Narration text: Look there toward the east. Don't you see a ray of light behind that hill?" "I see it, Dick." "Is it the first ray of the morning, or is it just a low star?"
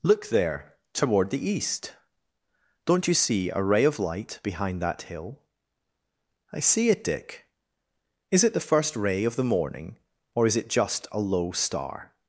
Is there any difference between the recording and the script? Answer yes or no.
no